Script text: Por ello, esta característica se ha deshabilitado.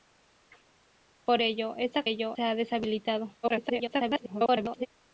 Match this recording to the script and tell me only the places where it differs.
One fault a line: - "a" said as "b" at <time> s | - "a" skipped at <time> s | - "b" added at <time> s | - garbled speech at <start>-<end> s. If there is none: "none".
- "característica" said as "ello" at 2.0 s
- garbled speech at 3.4-4.9 s